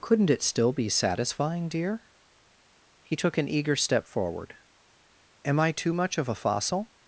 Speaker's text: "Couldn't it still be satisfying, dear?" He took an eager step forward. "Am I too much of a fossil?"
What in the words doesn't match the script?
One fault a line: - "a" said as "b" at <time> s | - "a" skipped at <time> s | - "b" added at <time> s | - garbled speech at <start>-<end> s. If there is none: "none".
none